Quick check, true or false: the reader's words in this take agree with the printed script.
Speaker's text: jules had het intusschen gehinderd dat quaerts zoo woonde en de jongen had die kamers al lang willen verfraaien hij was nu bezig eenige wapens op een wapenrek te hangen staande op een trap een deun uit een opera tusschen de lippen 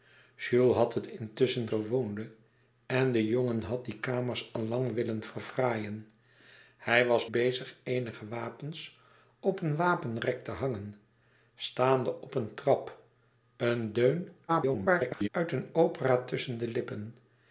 false